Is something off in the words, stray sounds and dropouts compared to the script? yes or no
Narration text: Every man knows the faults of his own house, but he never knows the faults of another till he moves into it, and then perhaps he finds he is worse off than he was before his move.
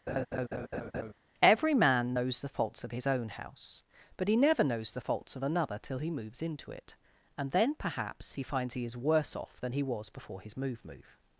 yes